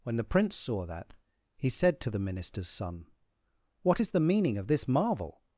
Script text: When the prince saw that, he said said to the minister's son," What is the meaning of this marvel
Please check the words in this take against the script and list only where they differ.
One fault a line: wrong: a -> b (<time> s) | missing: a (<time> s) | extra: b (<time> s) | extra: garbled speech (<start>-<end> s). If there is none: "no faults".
missing: said (2.0 s)